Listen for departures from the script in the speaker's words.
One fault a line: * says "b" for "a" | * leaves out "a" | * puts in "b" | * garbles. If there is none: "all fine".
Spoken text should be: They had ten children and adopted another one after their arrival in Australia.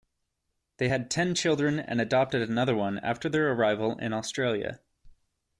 all fine